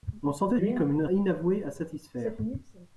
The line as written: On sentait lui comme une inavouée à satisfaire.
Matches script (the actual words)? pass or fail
pass